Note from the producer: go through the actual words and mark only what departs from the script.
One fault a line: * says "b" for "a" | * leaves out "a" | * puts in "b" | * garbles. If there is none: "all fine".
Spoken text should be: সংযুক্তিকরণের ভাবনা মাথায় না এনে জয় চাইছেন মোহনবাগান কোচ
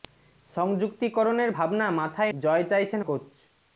* leaves out "না এনে"
* leaves out "মোহনবাগান"